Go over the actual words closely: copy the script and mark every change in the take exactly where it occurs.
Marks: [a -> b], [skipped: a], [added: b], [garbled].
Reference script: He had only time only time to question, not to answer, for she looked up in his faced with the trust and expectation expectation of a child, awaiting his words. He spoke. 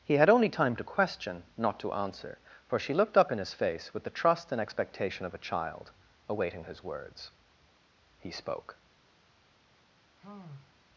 He had only time [skipped: only time] to question, not to answer, for she looked up in his [faced -> face] with the trust and expectation [skipped: expectation] of a child, awaiting his words. He spoke.